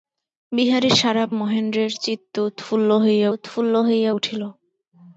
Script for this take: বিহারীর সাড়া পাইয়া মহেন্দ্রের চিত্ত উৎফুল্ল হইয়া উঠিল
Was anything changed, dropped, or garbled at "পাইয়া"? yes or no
yes